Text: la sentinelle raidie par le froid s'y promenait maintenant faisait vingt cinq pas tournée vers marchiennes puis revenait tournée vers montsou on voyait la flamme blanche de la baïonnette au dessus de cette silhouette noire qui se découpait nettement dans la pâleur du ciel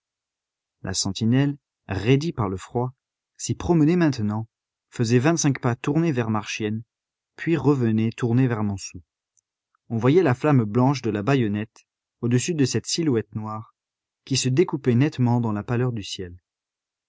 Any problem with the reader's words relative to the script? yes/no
no